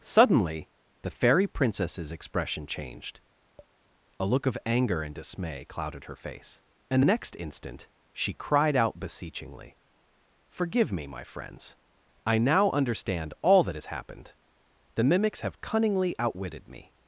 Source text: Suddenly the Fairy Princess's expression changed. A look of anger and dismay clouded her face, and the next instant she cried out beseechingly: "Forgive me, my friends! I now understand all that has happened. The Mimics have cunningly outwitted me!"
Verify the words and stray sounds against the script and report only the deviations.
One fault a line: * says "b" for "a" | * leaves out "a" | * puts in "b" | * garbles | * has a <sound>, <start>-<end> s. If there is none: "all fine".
* has a tap, 3.6-3.7 s